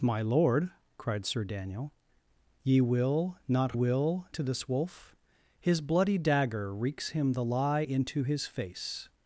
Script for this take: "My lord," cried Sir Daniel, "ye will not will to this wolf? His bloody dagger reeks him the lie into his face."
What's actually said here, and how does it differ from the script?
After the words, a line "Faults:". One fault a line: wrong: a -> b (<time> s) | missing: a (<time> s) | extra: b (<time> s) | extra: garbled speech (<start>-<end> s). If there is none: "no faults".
"My lord," cried Sir Daniel, "ye will not will to this wolf? His bloody dagger reeks him the lie into his face."
Faults:
no faults